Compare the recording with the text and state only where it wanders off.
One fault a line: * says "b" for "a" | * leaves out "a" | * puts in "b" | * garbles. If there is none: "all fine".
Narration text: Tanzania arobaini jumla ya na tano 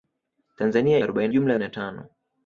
all fine